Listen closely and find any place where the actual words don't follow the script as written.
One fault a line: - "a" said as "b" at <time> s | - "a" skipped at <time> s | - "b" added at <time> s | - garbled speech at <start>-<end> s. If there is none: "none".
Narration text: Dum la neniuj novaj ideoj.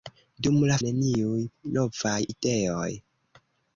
none